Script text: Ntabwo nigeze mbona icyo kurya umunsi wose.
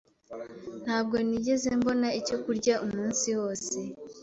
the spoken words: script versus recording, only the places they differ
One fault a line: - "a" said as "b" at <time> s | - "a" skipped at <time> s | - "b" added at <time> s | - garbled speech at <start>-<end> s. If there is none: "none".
none